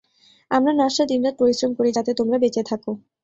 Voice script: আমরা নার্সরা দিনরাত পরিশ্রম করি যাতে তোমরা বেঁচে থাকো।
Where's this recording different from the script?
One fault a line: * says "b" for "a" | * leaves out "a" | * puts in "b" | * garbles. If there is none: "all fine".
all fine